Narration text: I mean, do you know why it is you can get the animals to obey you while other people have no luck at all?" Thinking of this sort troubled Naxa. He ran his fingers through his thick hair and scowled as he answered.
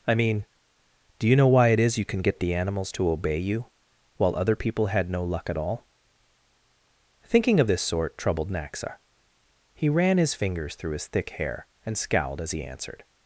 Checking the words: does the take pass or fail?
fail